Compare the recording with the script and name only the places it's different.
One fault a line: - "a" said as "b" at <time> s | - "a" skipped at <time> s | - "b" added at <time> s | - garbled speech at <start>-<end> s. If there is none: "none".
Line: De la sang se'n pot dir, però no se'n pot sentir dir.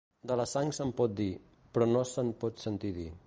none